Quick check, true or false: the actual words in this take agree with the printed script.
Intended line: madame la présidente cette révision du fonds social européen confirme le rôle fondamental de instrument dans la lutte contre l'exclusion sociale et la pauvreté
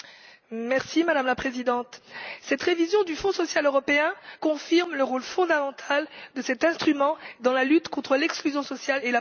false